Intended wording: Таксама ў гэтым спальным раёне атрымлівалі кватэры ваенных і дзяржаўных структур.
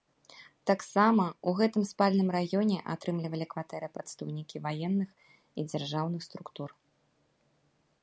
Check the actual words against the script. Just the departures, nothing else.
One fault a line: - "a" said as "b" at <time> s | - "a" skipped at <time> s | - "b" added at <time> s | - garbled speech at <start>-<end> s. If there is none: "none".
- "прадстаўнікі" added at 4.0 s